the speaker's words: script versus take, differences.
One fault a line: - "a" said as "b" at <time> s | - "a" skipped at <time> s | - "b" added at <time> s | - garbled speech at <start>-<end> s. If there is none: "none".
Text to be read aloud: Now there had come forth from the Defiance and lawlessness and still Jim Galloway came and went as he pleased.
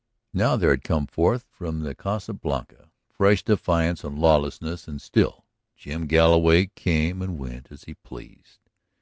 - "Casa Blanca fresh" added at 1.9 s